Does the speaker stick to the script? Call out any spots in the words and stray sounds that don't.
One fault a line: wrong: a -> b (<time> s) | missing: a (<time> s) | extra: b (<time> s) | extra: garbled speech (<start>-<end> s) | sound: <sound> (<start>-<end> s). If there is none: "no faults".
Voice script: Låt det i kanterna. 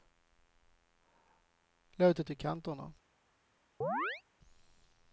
sound: chirp (3.8-4.2 s)